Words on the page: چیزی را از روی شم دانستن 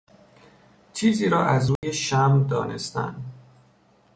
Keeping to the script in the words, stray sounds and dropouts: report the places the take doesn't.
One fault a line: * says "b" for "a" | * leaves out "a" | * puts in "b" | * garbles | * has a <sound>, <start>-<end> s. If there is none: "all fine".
* has a dropout, 1.8-1.8 s